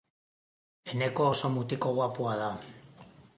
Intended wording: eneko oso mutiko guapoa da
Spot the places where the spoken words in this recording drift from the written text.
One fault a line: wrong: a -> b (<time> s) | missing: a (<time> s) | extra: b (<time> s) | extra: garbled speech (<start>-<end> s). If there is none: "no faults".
no faults